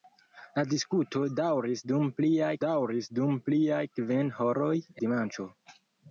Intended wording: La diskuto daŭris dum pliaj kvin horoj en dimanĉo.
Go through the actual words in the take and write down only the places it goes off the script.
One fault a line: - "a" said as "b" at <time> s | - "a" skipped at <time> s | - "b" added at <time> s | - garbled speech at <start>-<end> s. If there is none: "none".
- "daŭris dum pliaj" added at 2.7 s
- "en" skipped at 4.8 s